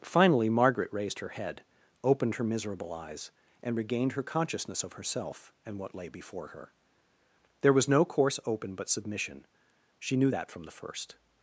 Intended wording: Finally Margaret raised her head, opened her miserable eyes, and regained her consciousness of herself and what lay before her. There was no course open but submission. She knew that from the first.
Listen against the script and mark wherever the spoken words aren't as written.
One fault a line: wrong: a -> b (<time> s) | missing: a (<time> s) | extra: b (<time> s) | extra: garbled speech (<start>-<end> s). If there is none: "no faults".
no faults